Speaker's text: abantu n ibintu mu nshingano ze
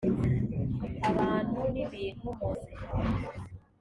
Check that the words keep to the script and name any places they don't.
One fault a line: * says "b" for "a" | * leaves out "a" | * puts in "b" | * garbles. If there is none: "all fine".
* leaves out "nshingano"